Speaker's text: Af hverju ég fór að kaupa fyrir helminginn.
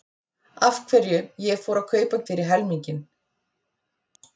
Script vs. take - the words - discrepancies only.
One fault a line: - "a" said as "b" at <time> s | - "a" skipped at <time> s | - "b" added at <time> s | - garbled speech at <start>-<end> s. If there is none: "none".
none